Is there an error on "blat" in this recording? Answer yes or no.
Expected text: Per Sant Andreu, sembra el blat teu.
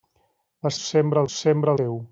yes